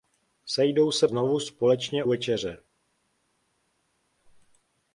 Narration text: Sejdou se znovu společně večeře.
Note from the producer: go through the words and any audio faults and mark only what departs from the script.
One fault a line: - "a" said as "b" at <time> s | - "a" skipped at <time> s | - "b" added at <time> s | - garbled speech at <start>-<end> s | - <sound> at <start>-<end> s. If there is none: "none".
none